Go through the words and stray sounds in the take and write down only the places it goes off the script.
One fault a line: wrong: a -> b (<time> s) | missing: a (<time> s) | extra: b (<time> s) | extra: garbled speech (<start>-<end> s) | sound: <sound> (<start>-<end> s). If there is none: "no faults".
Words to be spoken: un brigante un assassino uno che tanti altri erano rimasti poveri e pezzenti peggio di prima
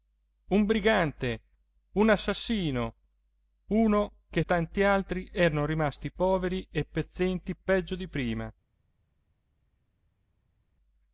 no faults